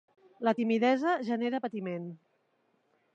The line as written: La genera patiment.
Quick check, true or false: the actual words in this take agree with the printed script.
false